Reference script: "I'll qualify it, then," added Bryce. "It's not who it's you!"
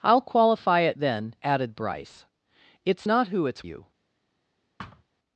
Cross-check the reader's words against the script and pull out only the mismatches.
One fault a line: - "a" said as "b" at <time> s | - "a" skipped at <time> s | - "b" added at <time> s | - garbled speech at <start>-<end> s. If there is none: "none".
none